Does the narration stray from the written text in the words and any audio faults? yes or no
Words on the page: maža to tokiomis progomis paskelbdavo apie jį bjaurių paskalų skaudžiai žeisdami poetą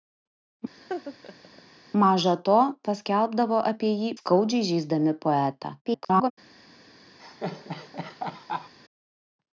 yes